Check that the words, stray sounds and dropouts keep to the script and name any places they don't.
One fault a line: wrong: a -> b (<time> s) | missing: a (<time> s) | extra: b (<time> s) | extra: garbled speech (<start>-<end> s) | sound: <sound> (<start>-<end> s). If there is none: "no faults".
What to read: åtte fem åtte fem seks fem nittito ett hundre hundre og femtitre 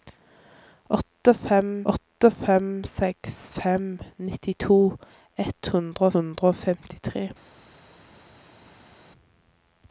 no faults